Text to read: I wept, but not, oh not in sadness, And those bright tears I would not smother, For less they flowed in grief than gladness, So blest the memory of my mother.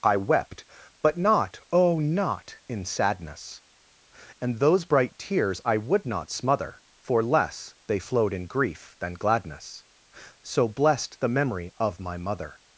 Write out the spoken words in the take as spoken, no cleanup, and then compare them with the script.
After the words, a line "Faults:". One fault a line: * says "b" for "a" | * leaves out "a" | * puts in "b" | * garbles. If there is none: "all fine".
I wept, but not, oh not in sadness, And those bright tears I would not smother, For less they flowed in grief than gladness, So blest the memory of my mother.
Faults:
all fine